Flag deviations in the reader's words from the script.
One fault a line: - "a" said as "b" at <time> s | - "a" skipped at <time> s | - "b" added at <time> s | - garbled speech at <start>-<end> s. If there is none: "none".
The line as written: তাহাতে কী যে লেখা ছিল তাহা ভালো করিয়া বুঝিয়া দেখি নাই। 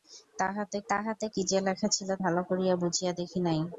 - "তাহাতে" added at 0.9 s
- "তাহা" skipped at 2.1 s